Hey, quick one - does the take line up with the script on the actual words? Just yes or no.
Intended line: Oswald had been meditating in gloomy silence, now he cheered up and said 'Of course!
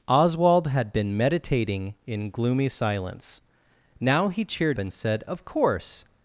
no